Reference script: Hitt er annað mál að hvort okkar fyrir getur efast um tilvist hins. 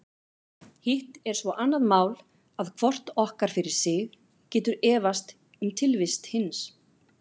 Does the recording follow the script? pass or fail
fail